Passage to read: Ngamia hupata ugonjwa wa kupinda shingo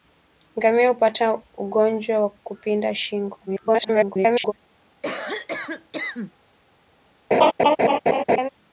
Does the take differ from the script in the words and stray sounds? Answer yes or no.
yes